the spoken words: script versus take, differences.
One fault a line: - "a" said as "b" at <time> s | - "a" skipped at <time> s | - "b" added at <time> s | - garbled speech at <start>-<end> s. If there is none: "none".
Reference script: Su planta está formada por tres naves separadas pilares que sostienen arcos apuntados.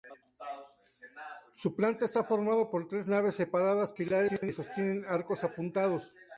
none